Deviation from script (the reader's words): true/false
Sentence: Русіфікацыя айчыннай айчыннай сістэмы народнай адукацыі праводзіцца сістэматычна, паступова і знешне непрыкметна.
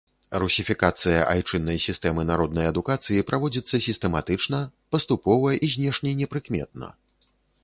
true